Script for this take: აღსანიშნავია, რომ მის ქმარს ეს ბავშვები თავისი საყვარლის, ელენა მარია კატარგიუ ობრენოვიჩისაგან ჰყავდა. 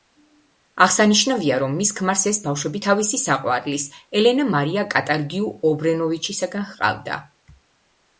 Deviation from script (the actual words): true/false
false